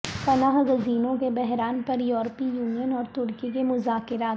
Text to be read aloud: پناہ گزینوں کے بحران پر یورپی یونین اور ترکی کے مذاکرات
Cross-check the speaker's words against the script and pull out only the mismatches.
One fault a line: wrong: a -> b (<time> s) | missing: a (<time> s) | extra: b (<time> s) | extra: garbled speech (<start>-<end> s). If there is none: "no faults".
no faults